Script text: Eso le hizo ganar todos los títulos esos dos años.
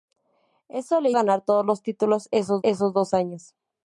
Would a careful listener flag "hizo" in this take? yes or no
yes